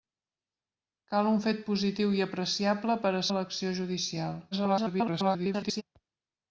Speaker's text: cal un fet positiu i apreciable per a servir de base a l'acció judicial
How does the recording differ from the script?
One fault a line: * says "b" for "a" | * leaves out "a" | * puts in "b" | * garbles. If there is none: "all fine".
* leaves out "servir de base"
* garbles